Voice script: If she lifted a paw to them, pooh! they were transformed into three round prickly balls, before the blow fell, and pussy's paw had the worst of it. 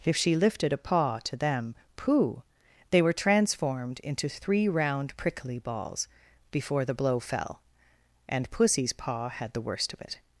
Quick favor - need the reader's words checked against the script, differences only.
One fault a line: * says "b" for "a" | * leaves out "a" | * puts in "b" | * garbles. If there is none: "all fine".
all fine